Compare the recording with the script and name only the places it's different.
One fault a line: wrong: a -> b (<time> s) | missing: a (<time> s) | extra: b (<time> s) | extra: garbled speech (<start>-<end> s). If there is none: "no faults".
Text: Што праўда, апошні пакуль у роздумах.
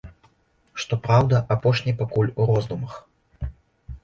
no faults